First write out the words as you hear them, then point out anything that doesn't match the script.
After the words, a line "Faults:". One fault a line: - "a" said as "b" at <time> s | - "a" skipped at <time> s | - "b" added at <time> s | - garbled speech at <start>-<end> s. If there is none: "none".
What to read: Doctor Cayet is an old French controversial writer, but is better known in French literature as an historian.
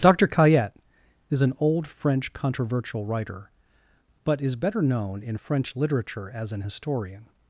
Doctor Cayet is an old French controversial writer, but is better known in French literature as an historian.
Faults:
none